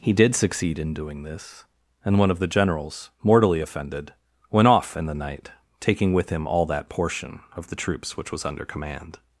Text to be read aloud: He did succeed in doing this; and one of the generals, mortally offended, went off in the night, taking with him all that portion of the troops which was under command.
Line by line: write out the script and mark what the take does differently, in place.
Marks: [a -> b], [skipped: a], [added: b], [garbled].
He did succeed in doing this; and one of the generals, mortally offended, went off in the night, taking with him all that portion of the troops which was under command.